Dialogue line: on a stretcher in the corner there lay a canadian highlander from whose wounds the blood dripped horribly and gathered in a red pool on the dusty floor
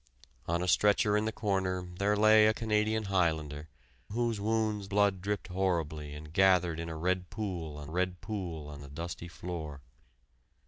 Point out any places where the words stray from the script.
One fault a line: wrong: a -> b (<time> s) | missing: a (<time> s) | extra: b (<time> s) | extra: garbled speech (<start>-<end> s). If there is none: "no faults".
missing: from (3.7 s)
missing: the (4.9 s)
extra: red pool on (7.9 s)